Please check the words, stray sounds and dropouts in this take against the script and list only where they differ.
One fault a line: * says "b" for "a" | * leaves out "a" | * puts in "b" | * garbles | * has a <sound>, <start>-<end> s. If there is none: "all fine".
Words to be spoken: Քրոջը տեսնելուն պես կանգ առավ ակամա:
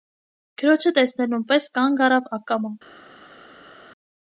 all fine